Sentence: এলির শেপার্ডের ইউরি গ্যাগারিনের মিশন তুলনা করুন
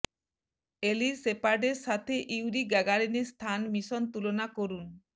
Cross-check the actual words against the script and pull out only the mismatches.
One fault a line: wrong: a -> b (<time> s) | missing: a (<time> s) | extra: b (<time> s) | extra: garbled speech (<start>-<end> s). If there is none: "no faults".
extra: সাথে (1.9 s)
extra: স্থান (3.3 s)